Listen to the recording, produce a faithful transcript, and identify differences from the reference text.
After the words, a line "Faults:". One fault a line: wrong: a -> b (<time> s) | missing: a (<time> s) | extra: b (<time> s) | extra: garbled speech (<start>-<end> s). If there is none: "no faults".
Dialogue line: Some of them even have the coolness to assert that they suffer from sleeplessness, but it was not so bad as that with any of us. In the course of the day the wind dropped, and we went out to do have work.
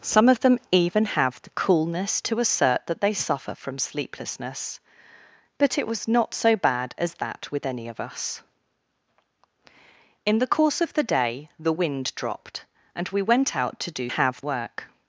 Some of them even have the coolness to assert that they suffer from sleeplessness, but it was not so bad as that with any of us. In the course of the day the wind dropped, and we went out to do have work.
Faults:
no faults